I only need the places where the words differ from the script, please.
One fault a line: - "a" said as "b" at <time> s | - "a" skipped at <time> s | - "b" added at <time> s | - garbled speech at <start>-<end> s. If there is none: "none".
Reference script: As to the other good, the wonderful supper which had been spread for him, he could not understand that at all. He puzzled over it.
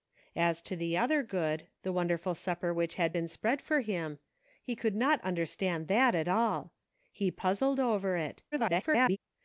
- garbled speech at 8.5-9.2 s